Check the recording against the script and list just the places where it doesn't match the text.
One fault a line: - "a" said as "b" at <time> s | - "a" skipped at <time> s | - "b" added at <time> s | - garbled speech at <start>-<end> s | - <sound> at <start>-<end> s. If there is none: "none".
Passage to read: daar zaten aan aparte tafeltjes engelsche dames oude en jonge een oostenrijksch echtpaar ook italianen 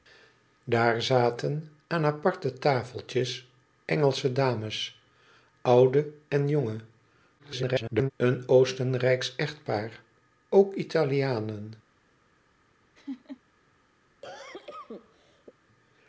- garbled speech at 7.4-8.1 s
- laugh at 12.9-13.4 s
- cough at 14.2-15.5 s